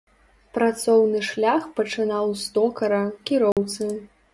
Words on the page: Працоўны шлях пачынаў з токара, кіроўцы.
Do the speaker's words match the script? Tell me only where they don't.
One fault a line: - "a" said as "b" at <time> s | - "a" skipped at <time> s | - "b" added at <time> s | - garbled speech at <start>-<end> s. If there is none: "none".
none